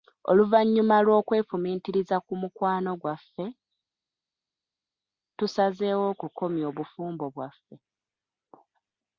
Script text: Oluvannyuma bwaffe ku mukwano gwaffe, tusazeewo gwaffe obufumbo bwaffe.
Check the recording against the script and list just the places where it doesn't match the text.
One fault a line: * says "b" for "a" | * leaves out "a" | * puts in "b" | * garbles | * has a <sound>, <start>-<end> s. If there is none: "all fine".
* says "lw'okwefumiitiriza" for "bwaffe"
* says "okukomya" for "gwaffe"